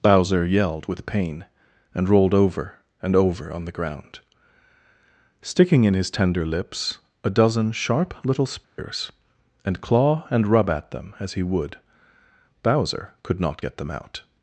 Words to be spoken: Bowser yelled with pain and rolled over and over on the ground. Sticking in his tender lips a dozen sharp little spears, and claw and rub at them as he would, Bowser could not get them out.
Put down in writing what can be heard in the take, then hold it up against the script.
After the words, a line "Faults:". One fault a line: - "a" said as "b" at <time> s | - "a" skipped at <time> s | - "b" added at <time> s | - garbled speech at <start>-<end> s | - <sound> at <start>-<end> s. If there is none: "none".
Bowser yelled with pain and rolled over and over on the ground. Sticking in his tender lips a dozen sharp little spears, and claw and rub at them as he would, Bowser could not get them out.
Faults:
- dropout at 8.6-8.8 s